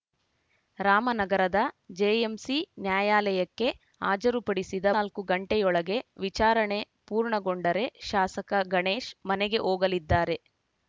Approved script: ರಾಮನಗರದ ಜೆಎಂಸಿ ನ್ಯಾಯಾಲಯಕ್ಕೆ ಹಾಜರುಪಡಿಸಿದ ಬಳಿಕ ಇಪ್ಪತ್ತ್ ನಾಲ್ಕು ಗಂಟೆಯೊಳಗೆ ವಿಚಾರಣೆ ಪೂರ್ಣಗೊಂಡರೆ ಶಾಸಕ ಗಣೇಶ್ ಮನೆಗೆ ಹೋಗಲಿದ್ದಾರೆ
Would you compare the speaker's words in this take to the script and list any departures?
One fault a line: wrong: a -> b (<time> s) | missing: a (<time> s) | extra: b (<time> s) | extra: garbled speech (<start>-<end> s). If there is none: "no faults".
missing: ಬಳಿಕ ಇಪ್ಪತ್ತ್ (4.8 s)